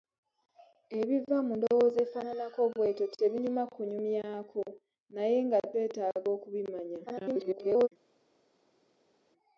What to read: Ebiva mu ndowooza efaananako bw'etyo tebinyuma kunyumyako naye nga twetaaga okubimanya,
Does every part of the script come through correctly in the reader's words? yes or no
no